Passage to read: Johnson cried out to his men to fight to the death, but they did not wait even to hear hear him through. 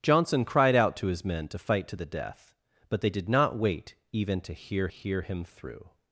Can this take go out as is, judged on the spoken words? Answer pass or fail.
pass